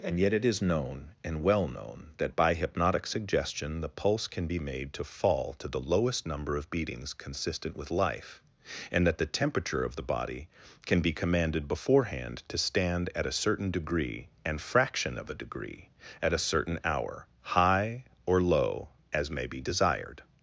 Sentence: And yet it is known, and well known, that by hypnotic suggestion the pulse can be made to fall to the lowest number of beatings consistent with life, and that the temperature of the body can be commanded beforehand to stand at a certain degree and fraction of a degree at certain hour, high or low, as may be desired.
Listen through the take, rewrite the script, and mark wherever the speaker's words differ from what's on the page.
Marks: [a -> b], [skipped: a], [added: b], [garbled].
And yet it is known, and well known, that by hypnotic suggestion the pulse can be made to fall to the lowest number of beatings consistent with life, and that the temperature of the body can be commanded beforehand to stand at a certain degree and fraction of a degree at [added: a] certain hour, high or low, as may be desired.